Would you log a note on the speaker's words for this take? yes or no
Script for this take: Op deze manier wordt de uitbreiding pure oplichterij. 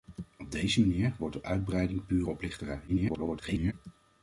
yes